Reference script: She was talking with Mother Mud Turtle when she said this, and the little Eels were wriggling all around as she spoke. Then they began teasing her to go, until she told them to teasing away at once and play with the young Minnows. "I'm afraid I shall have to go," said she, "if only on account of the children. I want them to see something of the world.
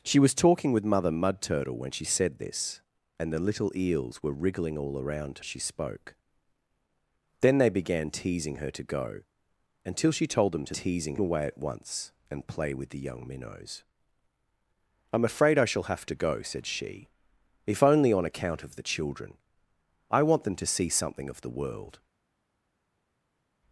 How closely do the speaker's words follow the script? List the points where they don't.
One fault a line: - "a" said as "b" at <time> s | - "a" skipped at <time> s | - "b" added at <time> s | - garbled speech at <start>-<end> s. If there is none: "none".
none